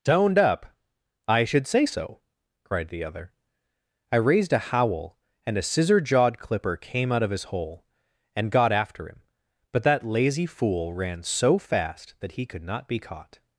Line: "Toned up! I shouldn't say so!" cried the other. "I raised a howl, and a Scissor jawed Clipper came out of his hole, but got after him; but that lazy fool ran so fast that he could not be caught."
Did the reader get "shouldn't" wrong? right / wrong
wrong